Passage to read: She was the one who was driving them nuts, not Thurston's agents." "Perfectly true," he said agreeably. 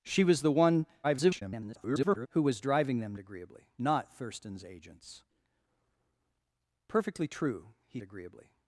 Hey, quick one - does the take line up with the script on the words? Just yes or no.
no